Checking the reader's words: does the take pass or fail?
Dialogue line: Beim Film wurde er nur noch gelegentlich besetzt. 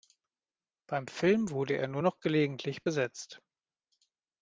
pass